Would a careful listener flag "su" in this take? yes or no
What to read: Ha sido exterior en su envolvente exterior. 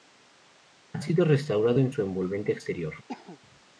no